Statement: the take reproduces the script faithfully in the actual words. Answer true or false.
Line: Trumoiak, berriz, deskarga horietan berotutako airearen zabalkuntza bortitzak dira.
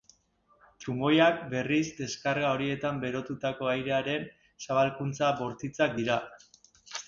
true